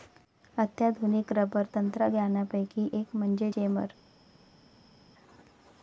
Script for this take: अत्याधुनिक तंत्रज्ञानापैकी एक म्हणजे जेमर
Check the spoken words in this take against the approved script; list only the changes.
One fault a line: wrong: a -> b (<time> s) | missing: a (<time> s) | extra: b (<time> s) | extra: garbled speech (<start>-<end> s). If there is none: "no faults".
extra: रबर (1.3 s)